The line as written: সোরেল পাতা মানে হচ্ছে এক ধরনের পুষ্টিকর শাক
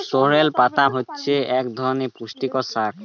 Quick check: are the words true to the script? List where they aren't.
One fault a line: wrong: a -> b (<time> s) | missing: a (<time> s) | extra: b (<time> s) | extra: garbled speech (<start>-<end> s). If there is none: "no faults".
missing: মানে (0.8 s)